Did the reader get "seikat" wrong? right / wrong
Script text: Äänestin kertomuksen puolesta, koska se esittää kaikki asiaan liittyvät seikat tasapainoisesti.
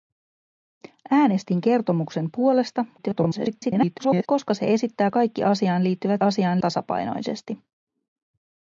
wrong